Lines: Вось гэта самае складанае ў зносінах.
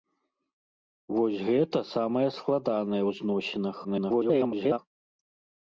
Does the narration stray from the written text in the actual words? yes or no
yes